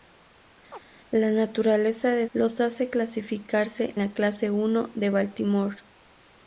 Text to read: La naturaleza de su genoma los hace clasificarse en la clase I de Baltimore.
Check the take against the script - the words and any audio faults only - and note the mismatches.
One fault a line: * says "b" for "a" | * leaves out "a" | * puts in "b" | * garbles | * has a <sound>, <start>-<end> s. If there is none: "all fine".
* has a chirp, 0.7-0.8 s
* leaves out "su genoma"
* leaves out "en"